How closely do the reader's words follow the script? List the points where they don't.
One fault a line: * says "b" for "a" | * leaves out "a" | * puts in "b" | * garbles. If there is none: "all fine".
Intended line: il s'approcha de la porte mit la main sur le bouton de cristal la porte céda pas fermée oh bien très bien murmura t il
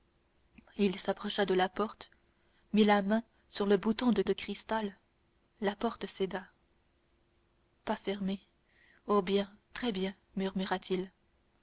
* puts in "de"